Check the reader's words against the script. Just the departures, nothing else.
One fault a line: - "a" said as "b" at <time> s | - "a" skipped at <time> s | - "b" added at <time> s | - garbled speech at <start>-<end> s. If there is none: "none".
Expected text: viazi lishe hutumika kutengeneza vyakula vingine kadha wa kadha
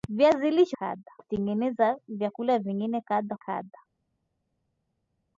- "hutumika" said as "kadha" at 0.8 s
- "wa" skipped at 3.4 s